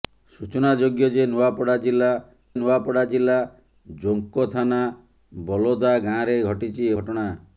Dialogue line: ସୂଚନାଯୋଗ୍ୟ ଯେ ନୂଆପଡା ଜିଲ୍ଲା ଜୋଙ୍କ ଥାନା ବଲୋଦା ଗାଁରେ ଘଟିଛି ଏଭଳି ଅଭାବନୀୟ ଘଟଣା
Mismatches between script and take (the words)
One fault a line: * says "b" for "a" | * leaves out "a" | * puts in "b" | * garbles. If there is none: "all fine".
* puts in "ନୂଆପଡା ଜିଲ୍ଲା"
* leaves out "ଏଭଳି ଅଭାବନୀୟ"